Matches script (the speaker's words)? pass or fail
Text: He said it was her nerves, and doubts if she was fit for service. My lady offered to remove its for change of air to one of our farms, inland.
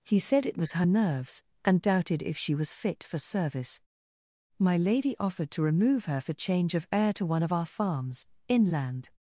fail